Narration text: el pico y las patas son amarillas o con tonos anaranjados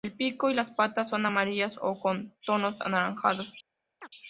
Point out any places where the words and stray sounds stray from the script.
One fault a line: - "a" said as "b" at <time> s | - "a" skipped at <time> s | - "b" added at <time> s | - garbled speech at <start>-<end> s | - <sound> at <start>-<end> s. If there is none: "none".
- chirp at 4.0-4.1 s